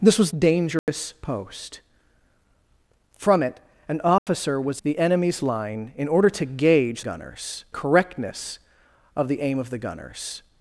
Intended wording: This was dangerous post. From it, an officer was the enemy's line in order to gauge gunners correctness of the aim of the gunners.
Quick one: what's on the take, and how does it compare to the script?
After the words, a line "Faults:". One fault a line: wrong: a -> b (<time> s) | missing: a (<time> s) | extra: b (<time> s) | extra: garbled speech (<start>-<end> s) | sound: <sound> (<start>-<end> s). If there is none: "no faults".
This was dangerous post. From it, an officer was the enemy's line in order to gauge gunners correctness of the aim of the gunners.
Faults:
sound: dropout (0.8-0.9 s)
sound: dropout (4.2-4.3 s)